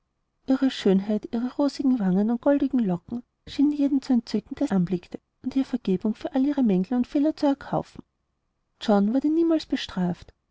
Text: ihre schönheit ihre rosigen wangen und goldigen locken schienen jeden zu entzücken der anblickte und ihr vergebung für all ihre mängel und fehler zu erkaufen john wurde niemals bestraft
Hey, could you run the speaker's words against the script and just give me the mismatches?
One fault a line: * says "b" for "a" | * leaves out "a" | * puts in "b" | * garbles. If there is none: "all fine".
all fine